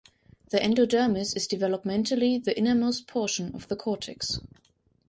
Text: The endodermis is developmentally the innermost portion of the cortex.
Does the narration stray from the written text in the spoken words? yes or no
no